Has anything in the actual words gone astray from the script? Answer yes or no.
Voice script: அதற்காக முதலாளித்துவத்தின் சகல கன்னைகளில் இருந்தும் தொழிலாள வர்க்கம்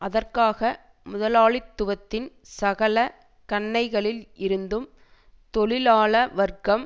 no